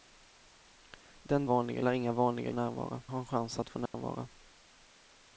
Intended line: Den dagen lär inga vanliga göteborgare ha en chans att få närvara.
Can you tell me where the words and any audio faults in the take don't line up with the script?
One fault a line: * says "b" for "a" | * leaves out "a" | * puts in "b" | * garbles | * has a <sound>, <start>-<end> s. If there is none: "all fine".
* says "vanliga" for "dagen"
* says "närvara" for "göteborgare"
* has a dropout, 3.9-3.9 s